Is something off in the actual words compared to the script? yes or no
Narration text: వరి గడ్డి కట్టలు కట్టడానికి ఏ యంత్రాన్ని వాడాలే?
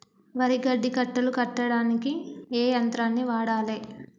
no